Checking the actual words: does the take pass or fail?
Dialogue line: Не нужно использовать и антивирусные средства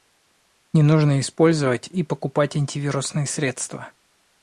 fail